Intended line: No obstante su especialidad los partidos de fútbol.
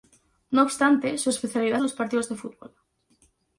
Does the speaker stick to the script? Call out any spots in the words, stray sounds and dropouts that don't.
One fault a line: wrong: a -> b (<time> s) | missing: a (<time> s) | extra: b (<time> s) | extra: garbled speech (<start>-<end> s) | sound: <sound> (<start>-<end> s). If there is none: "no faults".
no faults